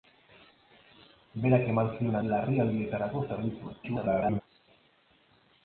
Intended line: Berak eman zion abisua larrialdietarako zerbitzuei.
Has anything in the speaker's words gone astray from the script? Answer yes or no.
yes